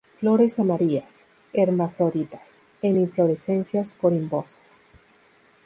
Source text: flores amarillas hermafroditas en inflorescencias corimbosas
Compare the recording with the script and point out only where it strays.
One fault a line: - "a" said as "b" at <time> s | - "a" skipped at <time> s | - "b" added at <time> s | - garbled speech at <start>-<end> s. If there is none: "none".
none